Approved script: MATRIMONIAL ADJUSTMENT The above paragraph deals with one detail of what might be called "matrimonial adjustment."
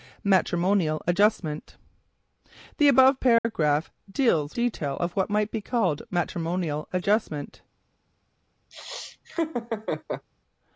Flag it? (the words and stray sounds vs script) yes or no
yes